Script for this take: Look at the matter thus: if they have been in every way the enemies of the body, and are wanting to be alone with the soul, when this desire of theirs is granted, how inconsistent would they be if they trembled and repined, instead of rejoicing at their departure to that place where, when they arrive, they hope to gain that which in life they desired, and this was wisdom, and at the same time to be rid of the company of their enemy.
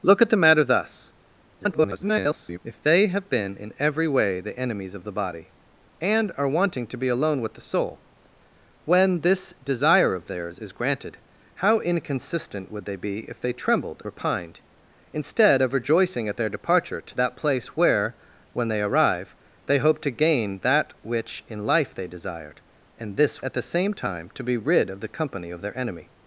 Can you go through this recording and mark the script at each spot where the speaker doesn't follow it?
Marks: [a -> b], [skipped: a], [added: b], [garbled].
Look at the matter thus: [garbled] if they have been in every way the enemies of the body, and are wanting to be alone with the soul, when this desire of theirs is granted, how inconsistent would they be if they trembled [skipped: and] repined, instead of rejoicing at their departure to that place where, when they arrive, they hope to gain that which in life they desired, and this [skipped: was wisdom, and] at the same time to be rid of the company of their enemy.